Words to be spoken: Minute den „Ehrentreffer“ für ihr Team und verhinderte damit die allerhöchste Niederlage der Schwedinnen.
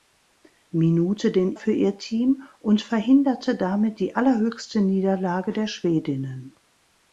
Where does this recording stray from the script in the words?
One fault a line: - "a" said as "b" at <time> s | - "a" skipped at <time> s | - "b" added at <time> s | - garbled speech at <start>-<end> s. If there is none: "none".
- "Ehrentreffer" skipped at 1.6 s